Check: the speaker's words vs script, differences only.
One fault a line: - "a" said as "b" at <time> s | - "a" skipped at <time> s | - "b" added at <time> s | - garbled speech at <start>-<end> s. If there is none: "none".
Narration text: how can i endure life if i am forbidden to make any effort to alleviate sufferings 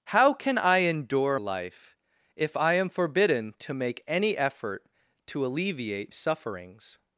none